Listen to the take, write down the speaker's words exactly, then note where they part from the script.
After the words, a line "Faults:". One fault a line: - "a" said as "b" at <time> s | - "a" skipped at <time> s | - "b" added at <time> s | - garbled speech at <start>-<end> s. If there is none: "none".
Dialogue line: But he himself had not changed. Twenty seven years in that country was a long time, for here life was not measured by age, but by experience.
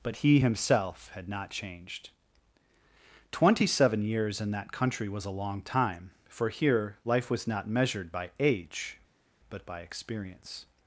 But he himself had not changed. Twenty seven years in that country was a long time, for here life was not measured by age, but by experience.
Faults:
none